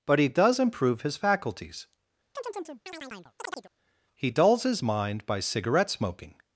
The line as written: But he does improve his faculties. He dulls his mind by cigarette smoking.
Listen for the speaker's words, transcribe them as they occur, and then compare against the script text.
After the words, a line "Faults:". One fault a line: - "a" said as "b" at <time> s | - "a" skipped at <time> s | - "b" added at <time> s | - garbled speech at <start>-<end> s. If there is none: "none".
But he does improve his faculties. He dulls his mind by cigarette smoking.
Faults:
none